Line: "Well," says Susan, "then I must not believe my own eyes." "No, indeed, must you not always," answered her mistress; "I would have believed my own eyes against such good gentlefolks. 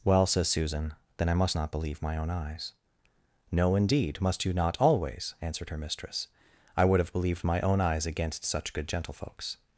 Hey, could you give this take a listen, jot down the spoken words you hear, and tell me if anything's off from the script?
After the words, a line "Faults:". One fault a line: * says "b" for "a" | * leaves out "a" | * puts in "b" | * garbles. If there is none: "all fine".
"Well," says Susan, "then I must not believe my own eyes." "No, indeed, must you not always," answered her mistress; "I would have believed my own eyes against such good gentlefolks.
Faults:
all fine